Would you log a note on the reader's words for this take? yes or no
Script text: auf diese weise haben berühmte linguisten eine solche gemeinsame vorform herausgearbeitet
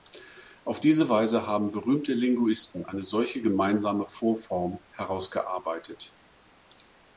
no